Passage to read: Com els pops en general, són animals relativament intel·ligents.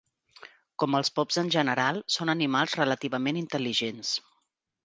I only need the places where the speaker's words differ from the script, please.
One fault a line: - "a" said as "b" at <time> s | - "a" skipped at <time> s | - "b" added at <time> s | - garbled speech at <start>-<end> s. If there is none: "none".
none